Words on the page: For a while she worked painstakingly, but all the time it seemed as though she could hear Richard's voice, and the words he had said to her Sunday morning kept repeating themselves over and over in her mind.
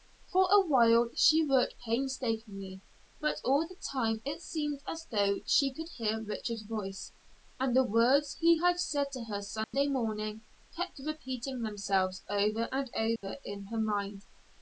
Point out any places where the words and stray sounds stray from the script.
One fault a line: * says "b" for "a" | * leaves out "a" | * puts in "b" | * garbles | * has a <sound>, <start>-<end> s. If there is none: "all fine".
* has a dropout, 9.6-9.7 s
* has a dropout, 13.2-13.2 s